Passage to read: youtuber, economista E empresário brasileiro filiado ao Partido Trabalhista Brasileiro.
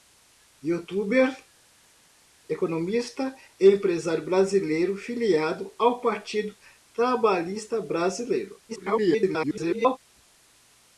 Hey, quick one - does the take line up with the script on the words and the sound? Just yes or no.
no